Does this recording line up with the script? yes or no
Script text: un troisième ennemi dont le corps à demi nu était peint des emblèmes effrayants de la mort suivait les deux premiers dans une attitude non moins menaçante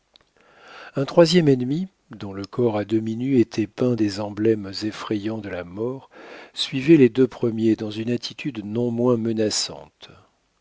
yes